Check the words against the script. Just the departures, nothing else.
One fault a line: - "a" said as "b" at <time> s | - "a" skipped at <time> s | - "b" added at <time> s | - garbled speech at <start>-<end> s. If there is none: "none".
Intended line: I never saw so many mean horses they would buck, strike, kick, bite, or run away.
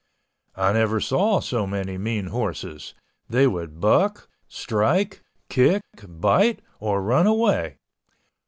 none